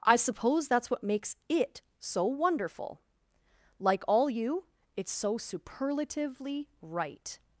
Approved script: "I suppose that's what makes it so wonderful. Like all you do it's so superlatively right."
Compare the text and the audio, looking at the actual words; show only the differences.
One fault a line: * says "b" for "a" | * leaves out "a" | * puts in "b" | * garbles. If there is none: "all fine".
* leaves out "do"